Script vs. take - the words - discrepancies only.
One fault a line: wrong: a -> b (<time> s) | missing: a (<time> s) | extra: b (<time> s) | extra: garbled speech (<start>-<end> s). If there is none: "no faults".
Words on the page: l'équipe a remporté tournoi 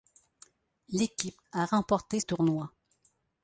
no faults